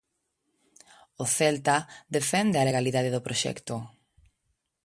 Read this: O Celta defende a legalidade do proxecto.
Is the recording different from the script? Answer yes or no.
no